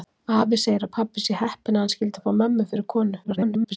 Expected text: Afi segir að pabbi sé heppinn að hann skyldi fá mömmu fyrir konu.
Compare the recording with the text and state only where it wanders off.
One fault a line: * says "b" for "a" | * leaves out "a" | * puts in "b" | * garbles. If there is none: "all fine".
* garbles